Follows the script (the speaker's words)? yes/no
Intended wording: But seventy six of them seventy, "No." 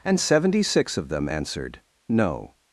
no